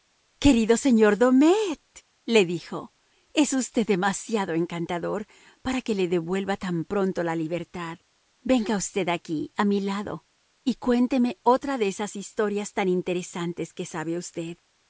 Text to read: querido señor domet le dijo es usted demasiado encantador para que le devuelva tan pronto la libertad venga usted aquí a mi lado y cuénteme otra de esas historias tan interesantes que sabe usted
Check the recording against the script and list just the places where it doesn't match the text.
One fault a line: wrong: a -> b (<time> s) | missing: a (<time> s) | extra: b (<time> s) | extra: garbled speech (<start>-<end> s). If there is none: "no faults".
no faults